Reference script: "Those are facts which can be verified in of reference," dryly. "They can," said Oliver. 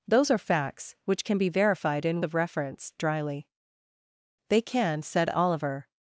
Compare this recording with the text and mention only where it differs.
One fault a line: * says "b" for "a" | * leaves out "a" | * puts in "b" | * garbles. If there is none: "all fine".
all fine